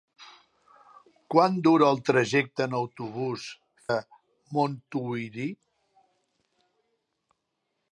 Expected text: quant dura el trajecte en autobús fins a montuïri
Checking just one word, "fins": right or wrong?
wrong